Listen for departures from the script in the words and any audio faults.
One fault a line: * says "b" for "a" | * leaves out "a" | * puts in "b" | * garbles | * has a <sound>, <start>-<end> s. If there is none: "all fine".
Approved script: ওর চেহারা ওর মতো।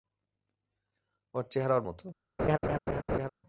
* has a laugh, 2.4-3.3 s